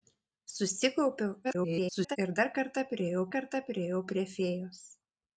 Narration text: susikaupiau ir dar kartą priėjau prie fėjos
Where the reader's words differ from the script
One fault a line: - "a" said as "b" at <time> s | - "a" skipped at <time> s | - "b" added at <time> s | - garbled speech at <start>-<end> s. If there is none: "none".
- garbled speech at 1.4-2.2 s
- "kartą priėjau" added at 3.4 s